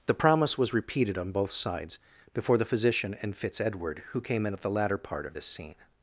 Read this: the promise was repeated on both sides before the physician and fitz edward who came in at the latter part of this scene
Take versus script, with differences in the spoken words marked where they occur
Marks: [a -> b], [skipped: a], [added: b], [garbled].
the promise was repeated on both sides before the physician and fitz edward who came in at the latter part of this scene